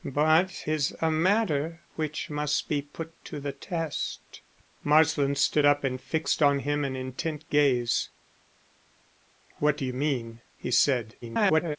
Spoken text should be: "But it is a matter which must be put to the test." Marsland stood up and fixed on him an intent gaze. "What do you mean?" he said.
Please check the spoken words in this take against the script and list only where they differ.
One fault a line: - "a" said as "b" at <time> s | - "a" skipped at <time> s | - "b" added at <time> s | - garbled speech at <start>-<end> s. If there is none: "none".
- "it" skipped at 0.7 s
- garbled speech at 11.2-11.8 s